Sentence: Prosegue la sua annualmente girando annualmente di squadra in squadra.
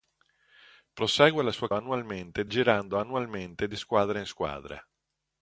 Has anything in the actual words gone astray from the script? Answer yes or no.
no